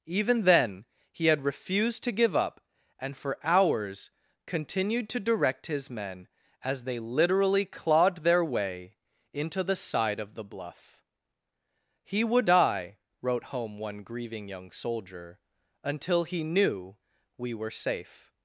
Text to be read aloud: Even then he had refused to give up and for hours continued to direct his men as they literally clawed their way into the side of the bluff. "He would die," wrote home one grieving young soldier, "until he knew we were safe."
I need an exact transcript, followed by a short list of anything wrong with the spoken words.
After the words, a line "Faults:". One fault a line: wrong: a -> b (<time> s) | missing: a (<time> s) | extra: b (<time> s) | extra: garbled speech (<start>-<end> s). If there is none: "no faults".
Even then he had refused to give up and for hours continued to direct his men as they literally clawed their way into the side of the bluff. "He would die," wrote home one grieving young soldier, "until he knew we were safe."
Faults:
no faults